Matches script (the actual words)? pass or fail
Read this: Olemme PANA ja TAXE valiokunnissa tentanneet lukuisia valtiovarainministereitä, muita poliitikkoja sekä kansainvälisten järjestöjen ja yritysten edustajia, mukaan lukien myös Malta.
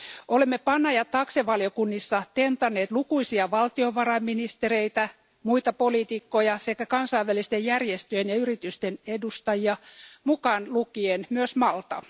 pass